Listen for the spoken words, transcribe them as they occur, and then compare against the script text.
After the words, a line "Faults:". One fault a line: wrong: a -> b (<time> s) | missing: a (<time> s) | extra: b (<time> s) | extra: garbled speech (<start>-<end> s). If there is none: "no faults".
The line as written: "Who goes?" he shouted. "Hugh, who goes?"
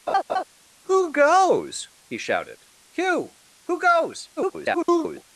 "Who goes?" he shouted. "Hugh, who goes?" [garbled]
Faults:
extra: garbled speech (4.4-5.2 s)